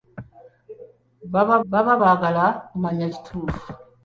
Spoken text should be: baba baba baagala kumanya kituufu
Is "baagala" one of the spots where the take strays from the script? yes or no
no